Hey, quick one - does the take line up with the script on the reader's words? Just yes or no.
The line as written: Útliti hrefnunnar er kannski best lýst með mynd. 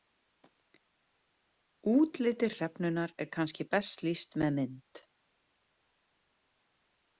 yes